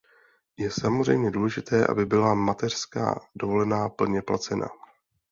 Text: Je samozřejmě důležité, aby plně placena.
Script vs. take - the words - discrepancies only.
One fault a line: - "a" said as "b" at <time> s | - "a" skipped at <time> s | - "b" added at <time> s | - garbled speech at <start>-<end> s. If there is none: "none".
- "byla mateřská dovolená" added at 2.0 s